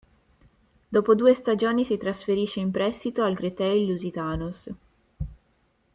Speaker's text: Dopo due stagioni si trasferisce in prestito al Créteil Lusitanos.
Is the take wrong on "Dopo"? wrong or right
right